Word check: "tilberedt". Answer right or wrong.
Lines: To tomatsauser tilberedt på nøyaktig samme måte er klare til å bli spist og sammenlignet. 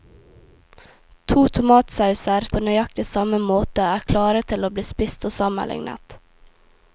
wrong